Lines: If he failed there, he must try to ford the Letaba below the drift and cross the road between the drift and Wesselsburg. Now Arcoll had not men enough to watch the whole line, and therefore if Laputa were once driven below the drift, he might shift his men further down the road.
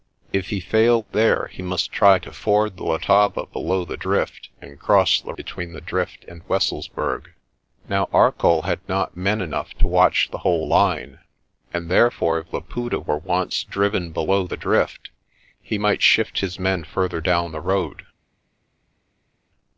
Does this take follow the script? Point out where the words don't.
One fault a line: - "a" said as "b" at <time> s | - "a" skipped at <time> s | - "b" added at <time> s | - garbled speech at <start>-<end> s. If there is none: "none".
- "road" skipped at 5.3 s